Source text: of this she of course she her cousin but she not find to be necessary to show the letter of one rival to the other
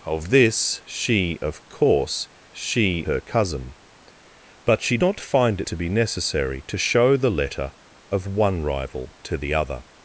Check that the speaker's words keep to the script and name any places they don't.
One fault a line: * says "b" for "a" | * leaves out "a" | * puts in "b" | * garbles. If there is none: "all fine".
all fine